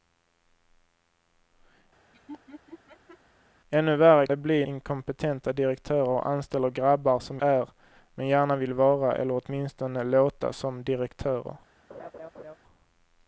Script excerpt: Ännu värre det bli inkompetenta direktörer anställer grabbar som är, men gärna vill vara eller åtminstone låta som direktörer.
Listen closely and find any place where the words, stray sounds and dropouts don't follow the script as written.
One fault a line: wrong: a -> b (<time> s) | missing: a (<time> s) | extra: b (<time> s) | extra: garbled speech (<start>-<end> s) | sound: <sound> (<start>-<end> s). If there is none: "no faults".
sound: laugh (2.1-3.2 s)
sound: laugh (11.9-12.6 s)